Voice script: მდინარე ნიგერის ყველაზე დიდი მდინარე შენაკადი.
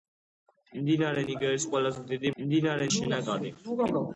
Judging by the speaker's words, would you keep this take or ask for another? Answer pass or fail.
pass